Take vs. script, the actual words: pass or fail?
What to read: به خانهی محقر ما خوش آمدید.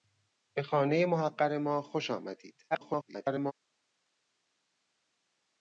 fail